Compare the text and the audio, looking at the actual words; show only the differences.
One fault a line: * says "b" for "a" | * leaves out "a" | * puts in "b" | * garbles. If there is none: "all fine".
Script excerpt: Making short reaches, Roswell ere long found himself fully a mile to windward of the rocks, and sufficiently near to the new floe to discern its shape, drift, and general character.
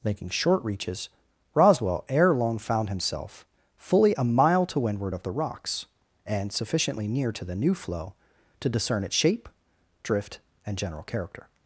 all fine